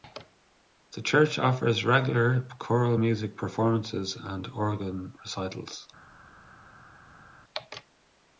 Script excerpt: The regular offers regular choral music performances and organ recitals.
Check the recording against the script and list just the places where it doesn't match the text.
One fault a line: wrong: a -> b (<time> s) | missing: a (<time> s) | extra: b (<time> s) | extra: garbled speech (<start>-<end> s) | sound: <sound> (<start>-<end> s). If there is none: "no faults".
wrong: regular -> church (1.0 s)